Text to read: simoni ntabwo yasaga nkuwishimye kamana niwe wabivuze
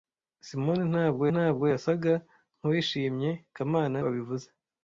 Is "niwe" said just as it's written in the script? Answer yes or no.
no